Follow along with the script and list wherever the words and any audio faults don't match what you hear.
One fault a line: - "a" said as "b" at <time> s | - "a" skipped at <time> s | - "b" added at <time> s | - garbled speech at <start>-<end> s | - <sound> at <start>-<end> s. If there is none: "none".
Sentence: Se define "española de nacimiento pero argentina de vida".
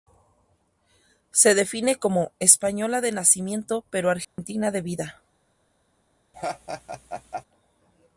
- "como" added at 2.0 s
- dropout at 4.2-4.4 s
- laugh at 6.3-7.4 s